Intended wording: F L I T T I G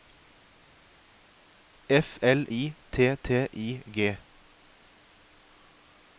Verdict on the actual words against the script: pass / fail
pass